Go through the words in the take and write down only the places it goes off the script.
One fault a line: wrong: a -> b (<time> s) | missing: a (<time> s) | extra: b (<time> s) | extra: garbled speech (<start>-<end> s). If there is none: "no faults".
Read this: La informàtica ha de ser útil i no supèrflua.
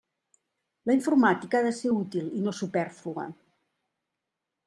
no faults